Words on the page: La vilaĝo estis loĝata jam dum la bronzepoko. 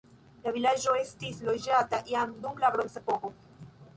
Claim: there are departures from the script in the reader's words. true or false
false